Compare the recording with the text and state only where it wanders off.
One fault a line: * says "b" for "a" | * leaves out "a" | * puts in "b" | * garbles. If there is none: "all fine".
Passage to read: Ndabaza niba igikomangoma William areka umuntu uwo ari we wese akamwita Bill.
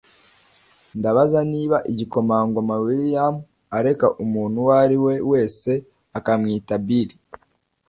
all fine